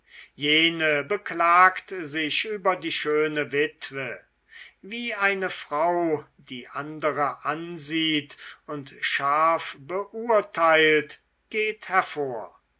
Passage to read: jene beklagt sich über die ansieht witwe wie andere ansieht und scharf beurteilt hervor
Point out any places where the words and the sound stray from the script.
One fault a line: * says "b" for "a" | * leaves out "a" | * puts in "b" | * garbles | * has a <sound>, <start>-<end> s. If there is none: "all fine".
* says "schöne" for "ansieht"
* puts in "eine frau die"
* puts in "geht"